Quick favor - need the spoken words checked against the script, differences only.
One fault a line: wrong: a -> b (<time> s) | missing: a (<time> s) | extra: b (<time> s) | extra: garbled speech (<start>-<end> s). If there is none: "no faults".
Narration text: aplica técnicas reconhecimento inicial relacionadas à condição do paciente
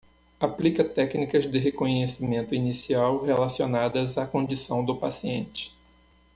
extra: de (1.4 s)